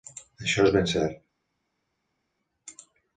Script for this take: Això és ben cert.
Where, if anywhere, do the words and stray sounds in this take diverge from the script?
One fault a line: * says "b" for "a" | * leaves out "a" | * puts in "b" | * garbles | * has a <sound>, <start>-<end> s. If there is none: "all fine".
all fine